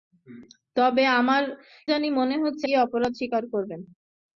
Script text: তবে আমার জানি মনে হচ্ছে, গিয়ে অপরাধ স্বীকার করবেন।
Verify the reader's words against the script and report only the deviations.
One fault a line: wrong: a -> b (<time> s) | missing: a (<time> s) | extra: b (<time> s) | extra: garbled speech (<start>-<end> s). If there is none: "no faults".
no faults